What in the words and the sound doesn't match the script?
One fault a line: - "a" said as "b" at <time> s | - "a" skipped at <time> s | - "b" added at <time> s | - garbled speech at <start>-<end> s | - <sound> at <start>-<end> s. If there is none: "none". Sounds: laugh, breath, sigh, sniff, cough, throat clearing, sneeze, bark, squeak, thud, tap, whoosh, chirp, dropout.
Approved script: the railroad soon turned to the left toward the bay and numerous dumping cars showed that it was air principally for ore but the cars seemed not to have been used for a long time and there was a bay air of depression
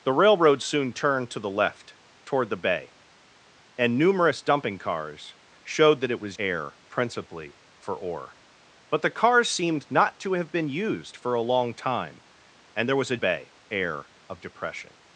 none